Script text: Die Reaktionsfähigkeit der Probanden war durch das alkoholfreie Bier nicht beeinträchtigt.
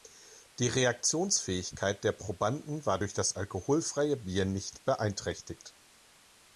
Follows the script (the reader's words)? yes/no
yes